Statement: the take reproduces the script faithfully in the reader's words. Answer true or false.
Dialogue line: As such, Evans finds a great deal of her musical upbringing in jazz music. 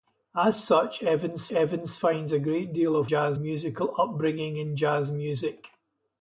false